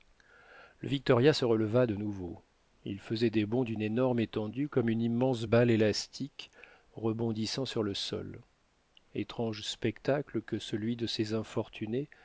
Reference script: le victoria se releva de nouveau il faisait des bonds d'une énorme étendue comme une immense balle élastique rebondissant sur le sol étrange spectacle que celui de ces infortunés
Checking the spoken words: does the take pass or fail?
pass